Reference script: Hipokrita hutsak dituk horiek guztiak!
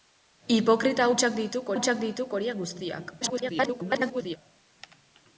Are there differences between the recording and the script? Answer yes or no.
yes